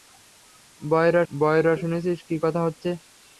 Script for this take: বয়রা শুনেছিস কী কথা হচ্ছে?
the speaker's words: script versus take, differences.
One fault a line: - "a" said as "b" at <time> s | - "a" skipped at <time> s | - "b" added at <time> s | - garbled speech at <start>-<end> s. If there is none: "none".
- "বয়রা" added at 1.3 s